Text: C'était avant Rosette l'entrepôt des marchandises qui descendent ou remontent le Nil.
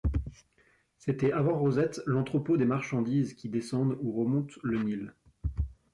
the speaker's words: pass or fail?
pass